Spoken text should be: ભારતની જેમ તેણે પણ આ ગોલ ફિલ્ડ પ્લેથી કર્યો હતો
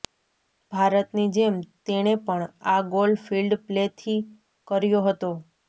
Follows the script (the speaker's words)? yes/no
yes